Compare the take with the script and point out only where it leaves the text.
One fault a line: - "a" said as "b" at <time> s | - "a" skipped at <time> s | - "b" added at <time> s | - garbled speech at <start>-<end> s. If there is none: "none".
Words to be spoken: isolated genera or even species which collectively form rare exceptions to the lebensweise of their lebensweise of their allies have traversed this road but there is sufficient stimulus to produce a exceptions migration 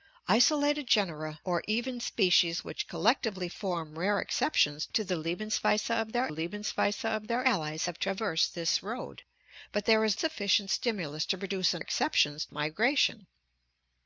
none